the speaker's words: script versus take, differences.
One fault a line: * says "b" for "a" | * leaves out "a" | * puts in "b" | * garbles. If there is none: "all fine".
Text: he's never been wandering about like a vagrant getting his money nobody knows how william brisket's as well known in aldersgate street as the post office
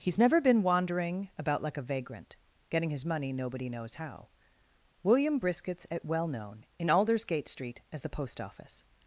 * says "at" for "as"